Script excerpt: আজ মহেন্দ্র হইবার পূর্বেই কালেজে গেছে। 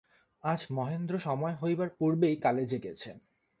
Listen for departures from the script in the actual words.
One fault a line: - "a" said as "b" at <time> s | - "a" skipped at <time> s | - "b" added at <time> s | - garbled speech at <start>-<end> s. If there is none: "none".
- "সময়" added at 1.2 s